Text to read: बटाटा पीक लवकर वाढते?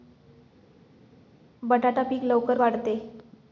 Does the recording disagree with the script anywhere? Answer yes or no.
no